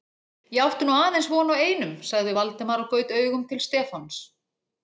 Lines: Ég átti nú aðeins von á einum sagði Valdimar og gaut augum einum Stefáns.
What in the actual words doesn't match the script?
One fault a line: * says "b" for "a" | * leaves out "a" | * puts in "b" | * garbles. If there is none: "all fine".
* says "til" for "einum"